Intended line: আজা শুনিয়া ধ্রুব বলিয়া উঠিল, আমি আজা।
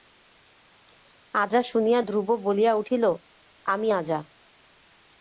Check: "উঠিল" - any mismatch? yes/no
no